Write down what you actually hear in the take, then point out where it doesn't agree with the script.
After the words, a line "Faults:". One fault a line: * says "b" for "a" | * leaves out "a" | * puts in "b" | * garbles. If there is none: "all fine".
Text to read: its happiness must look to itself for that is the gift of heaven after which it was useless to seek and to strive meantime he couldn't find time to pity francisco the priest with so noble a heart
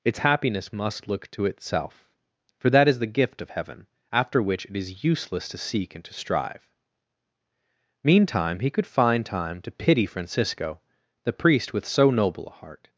its happiness must look to itself for that is the gift of heaven after which it is useless to seek and to strive meantime he could find time to pity francisco the priest with so noble a heart
Faults:
* says "is" for "was"
* says "could" for "couldn't"